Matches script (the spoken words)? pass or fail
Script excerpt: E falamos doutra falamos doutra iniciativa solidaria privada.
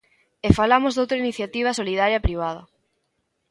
fail